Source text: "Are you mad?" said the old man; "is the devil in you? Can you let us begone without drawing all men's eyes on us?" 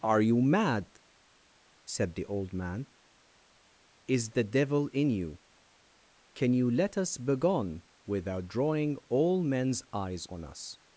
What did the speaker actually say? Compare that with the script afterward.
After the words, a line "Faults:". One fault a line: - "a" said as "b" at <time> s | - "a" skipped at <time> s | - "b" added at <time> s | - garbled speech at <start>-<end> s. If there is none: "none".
"Are you mad?" said the old man; "is the devil in you? Can you let us begone without drawing all men's eyes on us?"
Faults:
none